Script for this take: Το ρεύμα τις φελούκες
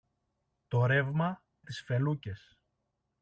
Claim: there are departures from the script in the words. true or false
false